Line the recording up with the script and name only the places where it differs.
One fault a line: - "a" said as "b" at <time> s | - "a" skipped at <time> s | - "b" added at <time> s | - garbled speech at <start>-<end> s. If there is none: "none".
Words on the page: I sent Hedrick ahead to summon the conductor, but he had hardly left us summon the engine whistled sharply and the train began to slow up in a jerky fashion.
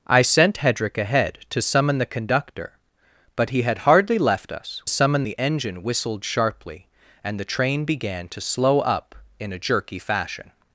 none